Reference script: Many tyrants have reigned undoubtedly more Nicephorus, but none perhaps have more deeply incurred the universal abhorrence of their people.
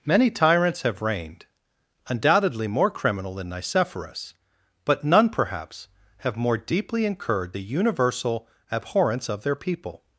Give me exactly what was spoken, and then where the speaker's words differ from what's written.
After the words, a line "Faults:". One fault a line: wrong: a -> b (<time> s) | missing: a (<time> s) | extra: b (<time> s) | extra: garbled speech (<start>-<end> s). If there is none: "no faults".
Many tyrants have reigned undoubtedly more criminal than Nicephorus, but none perhaps have more deeply incurred the universal abhorrence of their people.
Faults:
extra: criminal than (2.9 s)